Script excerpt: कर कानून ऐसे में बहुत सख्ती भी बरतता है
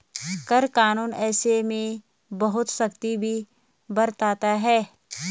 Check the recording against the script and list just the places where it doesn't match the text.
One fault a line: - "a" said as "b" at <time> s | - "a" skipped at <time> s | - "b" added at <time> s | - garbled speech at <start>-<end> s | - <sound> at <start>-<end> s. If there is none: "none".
none